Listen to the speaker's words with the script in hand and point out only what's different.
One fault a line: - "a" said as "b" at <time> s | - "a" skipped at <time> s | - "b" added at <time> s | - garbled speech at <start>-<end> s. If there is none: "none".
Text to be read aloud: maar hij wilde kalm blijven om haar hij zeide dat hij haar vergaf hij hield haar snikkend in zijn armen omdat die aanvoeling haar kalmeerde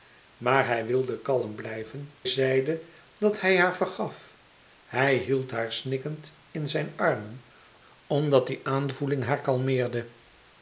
- "om haar hij" skipped at 2.2 s